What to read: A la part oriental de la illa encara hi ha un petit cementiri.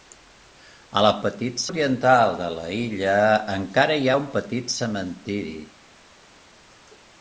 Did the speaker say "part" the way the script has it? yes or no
no